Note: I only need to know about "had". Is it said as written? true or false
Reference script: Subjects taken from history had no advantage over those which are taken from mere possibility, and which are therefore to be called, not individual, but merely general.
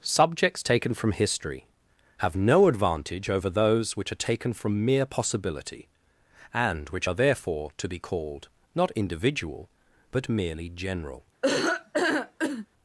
false